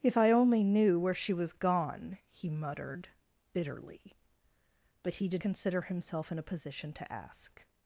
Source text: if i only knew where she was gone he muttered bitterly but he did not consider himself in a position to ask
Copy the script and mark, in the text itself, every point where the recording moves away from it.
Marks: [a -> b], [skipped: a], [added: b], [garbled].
if i only knew where she was gone he muttered bitterly but he did [skipped: not] consider himself in a position to ask